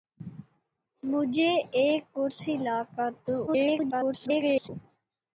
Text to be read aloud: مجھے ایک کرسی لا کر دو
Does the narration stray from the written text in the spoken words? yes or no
yes